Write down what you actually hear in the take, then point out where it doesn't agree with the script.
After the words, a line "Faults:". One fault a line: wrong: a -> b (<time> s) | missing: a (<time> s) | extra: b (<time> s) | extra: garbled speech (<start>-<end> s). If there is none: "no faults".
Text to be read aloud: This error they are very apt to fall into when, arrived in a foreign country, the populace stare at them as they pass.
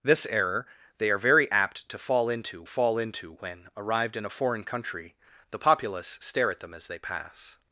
This error they are very apt to fall into fall into when, arrived in a foreign country, the populace stare at them as they pass.
Faults:
extra: fall into (2.6 s)